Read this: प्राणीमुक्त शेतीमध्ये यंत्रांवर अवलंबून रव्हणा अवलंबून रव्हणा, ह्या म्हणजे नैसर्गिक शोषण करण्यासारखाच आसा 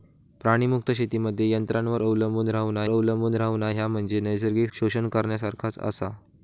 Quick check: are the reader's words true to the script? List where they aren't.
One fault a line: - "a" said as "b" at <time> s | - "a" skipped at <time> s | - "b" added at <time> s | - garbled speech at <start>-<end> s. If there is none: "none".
none